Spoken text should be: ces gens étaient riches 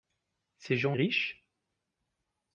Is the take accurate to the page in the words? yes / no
no